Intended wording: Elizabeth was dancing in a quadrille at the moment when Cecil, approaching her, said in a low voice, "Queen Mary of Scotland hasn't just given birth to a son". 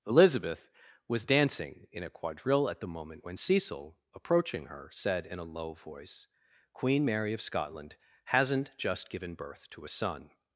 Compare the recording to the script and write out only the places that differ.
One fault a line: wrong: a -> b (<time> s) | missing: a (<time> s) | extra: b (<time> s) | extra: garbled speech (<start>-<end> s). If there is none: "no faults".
no faults